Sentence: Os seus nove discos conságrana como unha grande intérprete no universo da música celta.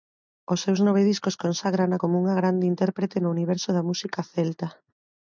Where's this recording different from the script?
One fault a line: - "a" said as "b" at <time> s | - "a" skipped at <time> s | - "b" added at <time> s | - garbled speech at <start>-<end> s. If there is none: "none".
none